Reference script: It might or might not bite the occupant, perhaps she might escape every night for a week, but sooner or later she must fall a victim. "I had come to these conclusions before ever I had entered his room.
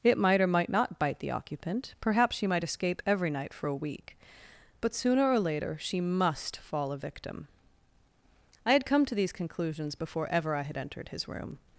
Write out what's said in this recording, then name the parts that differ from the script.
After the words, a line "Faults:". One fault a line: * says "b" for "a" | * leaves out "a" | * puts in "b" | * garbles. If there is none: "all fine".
It might or might not bite the occupant, perhaps she might escape every night for a week, but sooner or later she must fall a victim. "I had come to these conclusions before ever I had entered his room.
Faults:
all fine